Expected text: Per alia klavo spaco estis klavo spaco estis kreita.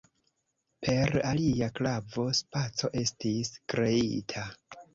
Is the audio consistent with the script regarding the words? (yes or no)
no